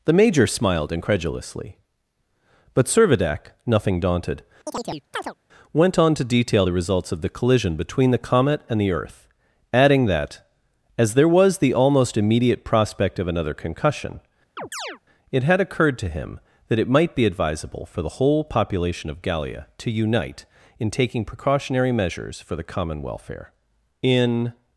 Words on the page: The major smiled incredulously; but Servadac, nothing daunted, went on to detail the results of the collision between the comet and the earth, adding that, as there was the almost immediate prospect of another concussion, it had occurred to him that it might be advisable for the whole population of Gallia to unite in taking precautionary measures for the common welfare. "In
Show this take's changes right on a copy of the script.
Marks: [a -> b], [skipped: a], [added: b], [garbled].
The major smiled incredulously; but Servadac, nothing daunted, went on to detail the results of the collision between the comet and the earth, adding that, as there was the almost immediate prospect of another concussion, it had occurred to him that it might be advisable for the whole population of Gallia to unite in taking precautionary measures for the common welfare. "In